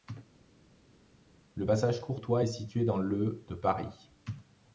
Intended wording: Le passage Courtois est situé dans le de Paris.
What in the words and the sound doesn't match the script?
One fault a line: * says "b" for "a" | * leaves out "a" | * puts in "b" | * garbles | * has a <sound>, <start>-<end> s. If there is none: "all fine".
all fine